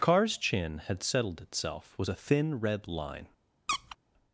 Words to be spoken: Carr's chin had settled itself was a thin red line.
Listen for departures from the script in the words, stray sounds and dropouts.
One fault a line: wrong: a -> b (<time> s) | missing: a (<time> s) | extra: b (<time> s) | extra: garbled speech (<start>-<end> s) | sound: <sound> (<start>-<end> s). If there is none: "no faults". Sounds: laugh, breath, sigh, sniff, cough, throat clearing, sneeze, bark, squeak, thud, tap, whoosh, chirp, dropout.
sound: squeak (3.7-4.0 s)